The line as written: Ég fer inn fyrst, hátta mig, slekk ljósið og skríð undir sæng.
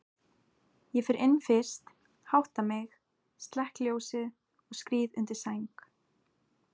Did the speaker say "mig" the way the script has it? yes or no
yes